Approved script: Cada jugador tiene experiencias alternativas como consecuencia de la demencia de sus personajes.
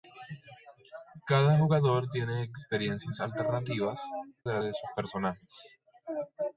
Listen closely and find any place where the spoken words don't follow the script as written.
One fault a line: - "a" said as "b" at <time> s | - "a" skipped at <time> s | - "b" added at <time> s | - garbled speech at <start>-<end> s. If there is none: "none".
- "como consecuencia" skipped at 4.0 s
- "demencia" skipped at 4.6 s